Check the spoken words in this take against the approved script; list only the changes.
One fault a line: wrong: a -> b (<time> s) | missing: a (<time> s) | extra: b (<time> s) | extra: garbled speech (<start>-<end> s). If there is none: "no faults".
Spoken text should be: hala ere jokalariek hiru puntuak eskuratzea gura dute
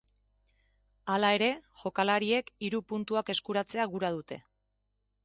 no faults